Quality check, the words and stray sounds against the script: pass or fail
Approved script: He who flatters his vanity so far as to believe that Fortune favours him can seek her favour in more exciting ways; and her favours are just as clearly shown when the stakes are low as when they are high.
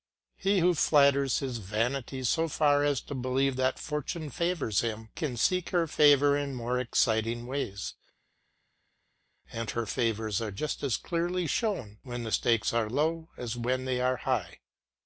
pass